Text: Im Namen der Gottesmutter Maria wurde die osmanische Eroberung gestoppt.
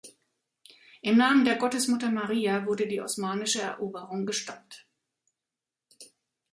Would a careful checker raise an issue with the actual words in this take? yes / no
no